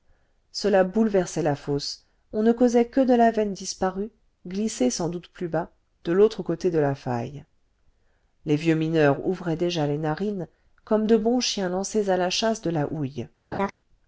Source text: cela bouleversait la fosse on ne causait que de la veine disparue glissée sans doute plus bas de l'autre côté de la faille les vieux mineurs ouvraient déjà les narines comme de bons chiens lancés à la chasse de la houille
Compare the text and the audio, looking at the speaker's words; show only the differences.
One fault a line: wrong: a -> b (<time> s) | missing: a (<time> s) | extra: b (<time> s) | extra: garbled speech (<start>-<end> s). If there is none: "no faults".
no faults